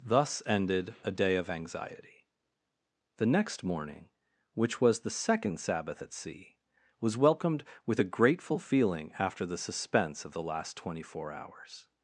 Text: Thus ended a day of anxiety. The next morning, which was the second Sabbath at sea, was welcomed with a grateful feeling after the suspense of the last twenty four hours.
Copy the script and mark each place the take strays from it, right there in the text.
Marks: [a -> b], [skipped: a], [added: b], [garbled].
Thus ended a day of anxiety. The next morning, which was the second Sabbath at sea, was welcomed with a grateful feeling after the suspense of the last twenty four hours.